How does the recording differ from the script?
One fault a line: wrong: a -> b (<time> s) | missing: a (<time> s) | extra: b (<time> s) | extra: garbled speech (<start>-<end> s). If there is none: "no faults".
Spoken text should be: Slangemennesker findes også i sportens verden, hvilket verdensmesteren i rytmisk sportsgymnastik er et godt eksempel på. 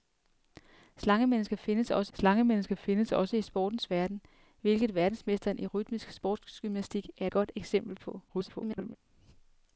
extra: slangemennesker findes også (2.1 s)
missing: et (7.3 s)
extra: garbled speech (8.3-9.0 s)